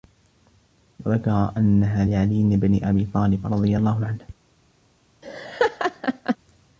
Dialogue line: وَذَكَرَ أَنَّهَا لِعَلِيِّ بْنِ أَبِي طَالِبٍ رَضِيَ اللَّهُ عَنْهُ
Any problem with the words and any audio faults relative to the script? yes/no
yes